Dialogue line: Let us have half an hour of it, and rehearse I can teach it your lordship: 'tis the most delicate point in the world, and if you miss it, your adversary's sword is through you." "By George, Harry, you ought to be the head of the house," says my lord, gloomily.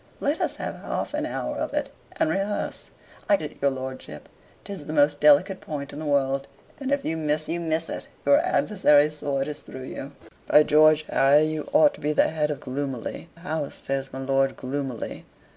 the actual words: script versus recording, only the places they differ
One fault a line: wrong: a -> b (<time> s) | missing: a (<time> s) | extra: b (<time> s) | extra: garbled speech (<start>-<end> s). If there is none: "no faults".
missing: can teach (3.4 s)
extra: you miss (7.5 s)
wrong: the -> gloomily (12.6 s)